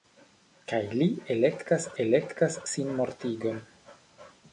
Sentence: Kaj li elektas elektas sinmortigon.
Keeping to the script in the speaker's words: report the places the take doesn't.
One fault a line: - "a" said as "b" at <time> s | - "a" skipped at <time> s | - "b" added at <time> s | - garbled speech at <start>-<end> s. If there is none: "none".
none